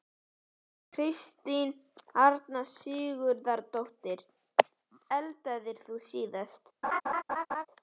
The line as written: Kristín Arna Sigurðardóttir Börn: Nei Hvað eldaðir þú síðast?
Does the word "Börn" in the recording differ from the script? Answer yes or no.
yes